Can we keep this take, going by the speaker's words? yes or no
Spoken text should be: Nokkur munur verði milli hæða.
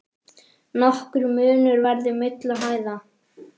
yes